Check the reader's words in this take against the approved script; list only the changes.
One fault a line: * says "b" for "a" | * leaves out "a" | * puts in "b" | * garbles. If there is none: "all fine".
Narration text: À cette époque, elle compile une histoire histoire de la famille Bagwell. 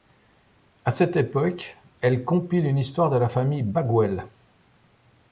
* leaves out "histoire"